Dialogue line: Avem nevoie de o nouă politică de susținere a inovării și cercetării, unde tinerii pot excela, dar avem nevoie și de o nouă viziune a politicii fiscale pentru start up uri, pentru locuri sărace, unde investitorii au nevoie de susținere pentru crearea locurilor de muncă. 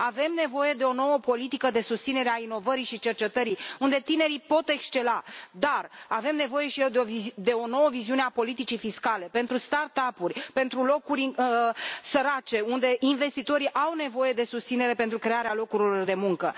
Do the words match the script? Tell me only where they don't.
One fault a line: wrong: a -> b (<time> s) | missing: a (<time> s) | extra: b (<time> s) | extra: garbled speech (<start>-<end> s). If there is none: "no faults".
no faults